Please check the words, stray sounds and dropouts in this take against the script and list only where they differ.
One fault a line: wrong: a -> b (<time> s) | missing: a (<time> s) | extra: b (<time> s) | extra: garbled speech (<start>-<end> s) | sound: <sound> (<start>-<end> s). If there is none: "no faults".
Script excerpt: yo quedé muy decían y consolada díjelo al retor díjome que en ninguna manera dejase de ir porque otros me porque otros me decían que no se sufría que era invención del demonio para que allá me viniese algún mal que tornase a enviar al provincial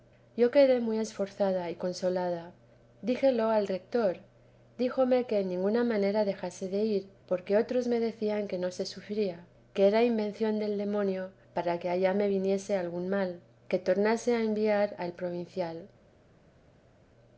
wrong: decían -> esforzada (1.0 s)
missing: porque otros me (8.0 s)